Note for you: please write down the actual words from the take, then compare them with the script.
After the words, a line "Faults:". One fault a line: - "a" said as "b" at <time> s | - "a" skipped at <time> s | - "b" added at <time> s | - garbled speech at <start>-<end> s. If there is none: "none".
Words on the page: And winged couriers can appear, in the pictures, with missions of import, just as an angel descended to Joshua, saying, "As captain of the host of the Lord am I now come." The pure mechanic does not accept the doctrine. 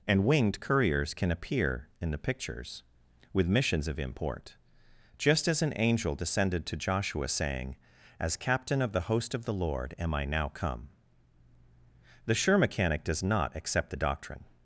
And winged couriers can appear, in the pictures, with missions of import, just as an angel descended to Joshua, saying, "As captain of the host of the Lord am I now come." The sure mechanic does not accept the doctrine.
Faults:
- "pure" said as "sure" at 12.3 s